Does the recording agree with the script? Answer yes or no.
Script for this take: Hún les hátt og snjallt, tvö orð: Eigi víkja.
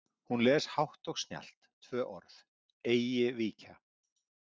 yes